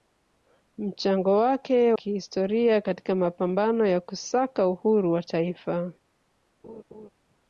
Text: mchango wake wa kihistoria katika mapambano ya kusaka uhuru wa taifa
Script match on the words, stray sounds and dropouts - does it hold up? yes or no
no